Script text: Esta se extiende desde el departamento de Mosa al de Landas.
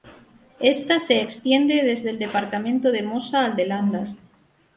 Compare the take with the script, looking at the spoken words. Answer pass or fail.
pass